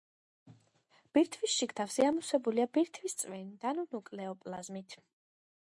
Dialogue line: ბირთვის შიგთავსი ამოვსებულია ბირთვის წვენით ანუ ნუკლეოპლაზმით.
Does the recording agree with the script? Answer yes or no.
yes